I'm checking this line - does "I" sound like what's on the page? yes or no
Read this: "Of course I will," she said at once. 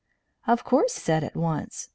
no